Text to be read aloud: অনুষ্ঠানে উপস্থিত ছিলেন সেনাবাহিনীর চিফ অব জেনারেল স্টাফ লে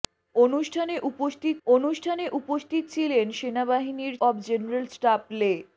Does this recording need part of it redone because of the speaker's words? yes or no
yes